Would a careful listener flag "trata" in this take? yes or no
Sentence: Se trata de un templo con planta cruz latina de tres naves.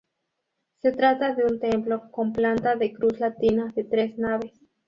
no